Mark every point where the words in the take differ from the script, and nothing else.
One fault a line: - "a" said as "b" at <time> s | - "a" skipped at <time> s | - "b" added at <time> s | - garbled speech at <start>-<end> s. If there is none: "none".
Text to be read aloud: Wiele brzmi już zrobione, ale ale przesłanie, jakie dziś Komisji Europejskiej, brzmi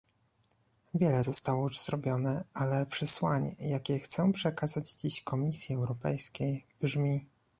- "brzmi" said as "zostało" at 1.2 s
- "ale" skipped at 2.9 s
- "chcę przekazać" added at 4.0 s